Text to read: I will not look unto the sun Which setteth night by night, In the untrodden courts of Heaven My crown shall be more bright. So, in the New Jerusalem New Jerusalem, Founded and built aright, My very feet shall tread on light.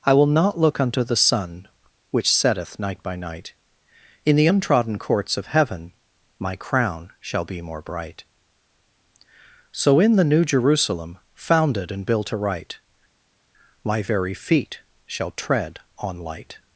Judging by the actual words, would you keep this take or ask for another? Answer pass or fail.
fail